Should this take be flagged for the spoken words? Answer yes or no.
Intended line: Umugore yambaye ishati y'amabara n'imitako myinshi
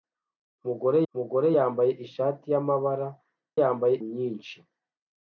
yes